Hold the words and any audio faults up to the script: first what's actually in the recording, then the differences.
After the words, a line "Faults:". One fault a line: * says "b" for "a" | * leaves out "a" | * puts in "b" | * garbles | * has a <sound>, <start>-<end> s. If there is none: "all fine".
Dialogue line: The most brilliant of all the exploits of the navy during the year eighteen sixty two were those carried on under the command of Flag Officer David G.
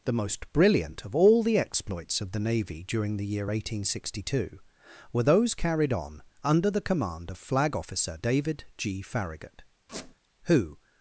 The most brilliant of all the exploits of the navy during the year eighteen sixty two were those carried on under the command of Flag Officer David G. Farragut, who
Faults:
* puts in "Farragut who"
* has a squeak, 9.9-10.2 s